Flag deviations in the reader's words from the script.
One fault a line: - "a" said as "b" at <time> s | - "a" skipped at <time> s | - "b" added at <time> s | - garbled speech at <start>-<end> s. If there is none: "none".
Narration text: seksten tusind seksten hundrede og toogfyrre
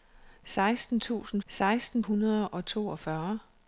none